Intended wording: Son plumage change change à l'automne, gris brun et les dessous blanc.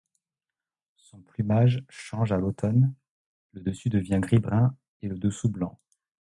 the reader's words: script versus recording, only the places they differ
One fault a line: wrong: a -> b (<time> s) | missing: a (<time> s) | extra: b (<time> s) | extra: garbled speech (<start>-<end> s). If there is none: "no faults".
missing: change (2.3 s)
extra: le dessus devient (3.5 s)
wrong: les -> le (5.1 s)